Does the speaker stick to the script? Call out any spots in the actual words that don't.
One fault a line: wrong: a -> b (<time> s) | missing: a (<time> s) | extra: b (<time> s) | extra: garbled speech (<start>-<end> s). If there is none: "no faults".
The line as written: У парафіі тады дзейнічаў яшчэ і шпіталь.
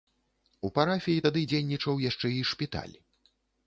no faults